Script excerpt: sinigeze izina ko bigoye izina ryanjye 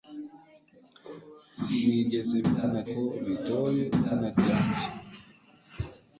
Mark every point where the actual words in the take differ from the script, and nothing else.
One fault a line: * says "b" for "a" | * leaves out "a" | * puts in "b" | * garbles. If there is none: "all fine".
all fine